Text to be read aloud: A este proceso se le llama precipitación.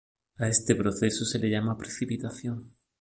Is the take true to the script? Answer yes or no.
yes